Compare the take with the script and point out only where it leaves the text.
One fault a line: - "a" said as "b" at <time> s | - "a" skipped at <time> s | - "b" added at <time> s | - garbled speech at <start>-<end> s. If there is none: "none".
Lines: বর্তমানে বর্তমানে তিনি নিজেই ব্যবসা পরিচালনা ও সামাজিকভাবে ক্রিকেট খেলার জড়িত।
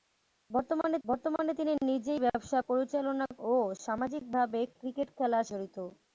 none